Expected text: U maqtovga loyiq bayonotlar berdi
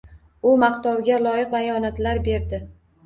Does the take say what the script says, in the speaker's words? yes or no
yes